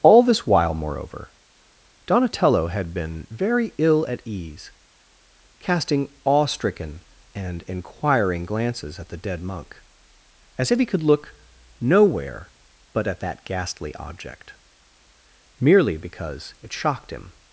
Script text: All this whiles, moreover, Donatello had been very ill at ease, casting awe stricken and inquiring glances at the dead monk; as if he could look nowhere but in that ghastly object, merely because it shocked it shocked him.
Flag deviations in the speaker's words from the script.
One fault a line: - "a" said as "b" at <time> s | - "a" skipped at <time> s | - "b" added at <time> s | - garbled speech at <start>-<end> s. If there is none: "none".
- "whiles" said as "while" at 0.5 s
- "in" said as "at" at 13.1 s
- "it shocked" skipped at 17.1 s